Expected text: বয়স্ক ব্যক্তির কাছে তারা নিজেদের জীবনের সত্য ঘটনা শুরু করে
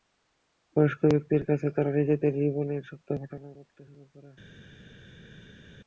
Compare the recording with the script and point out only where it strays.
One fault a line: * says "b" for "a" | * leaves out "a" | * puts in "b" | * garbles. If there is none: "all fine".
* puts in "বলতে"